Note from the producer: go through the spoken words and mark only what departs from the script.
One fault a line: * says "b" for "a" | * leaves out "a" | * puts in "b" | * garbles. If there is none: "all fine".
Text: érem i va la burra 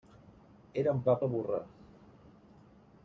all fine